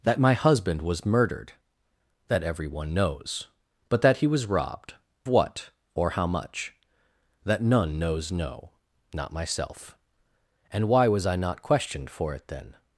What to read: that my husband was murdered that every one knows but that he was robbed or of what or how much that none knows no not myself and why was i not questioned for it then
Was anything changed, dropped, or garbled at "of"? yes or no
yes